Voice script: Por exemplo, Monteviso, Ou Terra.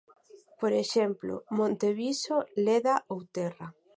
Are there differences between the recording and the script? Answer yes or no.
yes